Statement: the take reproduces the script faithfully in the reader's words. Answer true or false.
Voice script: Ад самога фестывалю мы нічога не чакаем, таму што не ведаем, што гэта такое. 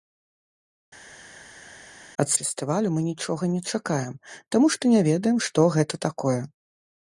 false